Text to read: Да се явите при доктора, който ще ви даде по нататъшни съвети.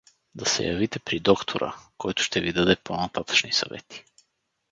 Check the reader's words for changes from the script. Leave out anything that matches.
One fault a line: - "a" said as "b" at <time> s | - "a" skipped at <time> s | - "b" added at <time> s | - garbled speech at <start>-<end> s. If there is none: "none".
none